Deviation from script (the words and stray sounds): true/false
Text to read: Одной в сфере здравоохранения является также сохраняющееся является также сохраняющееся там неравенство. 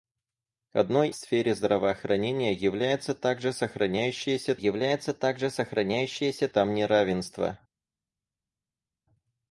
false